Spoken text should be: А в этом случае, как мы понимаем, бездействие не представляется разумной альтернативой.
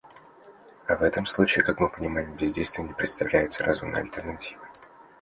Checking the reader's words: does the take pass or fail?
pass